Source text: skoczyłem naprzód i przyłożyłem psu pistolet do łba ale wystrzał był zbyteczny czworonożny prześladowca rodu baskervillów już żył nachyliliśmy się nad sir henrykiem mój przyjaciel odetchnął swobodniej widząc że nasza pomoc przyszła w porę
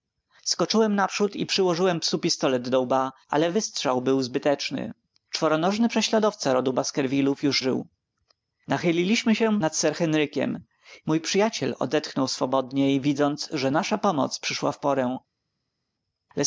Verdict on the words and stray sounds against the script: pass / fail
pass